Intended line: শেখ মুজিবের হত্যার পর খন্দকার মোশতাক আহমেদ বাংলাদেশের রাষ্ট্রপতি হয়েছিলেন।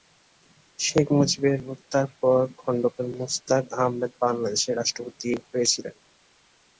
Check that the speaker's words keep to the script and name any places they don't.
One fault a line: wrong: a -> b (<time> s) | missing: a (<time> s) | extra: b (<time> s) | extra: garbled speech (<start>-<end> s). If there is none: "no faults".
no faults